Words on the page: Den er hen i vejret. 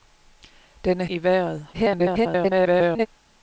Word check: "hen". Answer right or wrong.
wrong